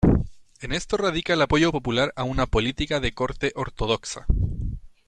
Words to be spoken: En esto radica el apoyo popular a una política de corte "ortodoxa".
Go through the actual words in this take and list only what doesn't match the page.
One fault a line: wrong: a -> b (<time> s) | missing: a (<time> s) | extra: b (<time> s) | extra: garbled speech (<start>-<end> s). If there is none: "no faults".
no faults